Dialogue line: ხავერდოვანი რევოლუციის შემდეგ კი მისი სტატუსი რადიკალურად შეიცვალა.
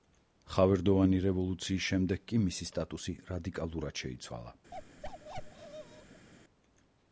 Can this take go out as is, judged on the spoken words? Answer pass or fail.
pass